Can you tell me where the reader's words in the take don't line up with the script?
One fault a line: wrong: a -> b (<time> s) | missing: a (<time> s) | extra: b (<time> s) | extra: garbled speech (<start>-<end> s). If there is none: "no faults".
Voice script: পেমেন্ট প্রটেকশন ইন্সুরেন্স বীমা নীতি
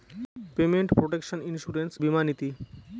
no faults